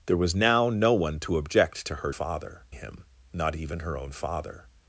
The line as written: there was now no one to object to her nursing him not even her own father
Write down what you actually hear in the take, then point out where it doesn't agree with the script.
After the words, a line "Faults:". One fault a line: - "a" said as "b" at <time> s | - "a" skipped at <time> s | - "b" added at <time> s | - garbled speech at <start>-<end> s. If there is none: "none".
there was now no one to object to her father him not even her own father
Faults:
- "nursing" said as "father" at 2.1 s